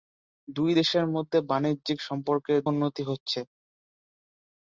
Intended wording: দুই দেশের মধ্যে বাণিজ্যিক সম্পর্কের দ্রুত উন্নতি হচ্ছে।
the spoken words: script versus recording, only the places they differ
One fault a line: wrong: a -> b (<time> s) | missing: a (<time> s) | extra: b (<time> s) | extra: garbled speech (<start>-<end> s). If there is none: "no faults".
missing: দ্রুত (2.6 s)